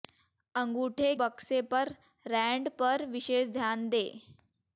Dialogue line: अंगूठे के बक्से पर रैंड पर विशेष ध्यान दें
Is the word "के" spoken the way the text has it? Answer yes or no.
no